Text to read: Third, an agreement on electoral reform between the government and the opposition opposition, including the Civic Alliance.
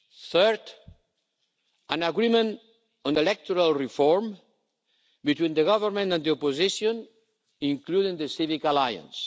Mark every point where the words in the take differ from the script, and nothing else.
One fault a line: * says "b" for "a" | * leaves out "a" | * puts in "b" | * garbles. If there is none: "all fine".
* leaves out "opposition"